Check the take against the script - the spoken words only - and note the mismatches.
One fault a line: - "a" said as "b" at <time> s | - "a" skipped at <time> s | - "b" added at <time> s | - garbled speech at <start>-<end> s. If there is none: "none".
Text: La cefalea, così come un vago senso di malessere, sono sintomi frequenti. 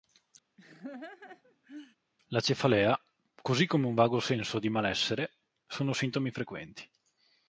none